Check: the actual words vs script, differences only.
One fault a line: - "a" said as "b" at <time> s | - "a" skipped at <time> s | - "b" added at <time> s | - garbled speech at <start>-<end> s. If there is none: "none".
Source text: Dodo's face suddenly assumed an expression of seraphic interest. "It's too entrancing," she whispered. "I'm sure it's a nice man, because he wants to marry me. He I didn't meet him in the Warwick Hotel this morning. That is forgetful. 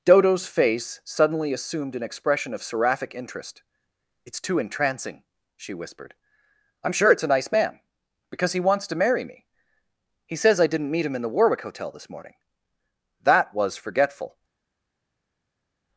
- "says" added at 10.3 s
- "is" said as "was" at 13.5 s